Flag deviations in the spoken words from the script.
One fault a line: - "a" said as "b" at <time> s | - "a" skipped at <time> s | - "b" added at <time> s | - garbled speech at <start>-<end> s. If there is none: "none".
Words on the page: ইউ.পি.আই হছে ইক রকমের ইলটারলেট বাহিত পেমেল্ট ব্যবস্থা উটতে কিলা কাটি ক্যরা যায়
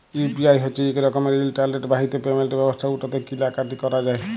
none